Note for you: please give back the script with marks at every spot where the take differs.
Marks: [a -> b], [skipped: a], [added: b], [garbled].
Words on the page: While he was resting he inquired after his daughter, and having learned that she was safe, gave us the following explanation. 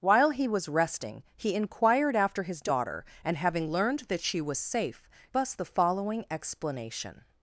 While he was resting he inquired after his daughter, and having learned that she was safe, [skipped: gave] us the following explanation.